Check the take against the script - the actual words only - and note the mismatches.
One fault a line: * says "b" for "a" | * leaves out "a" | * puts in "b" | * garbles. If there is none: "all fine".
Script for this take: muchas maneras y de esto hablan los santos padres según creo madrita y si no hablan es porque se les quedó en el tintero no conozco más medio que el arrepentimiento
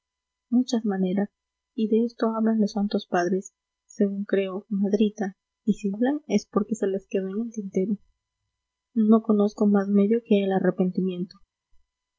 * leaves out "no"